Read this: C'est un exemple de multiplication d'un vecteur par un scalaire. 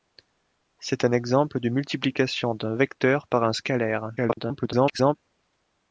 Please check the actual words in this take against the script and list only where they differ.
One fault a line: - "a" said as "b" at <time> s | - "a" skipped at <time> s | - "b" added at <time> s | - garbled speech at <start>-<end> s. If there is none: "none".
- garbled speech at 4.2-5.2 s